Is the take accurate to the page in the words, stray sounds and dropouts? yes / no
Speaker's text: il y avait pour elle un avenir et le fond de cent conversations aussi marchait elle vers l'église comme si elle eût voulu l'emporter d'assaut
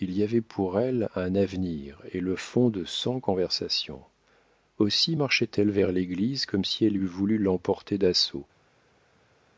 yes